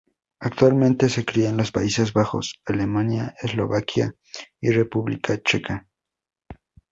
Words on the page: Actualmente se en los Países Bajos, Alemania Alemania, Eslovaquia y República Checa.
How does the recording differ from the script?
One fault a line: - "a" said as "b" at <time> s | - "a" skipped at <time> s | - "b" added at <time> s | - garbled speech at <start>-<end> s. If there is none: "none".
- "cría" added at 1.2 s
- "Alemania" skipped at 3.3 s